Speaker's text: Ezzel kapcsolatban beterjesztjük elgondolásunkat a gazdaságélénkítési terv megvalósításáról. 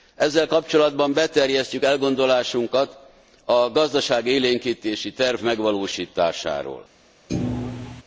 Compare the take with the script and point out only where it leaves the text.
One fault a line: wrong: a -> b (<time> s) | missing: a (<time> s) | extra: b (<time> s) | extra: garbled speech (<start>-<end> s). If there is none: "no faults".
no faults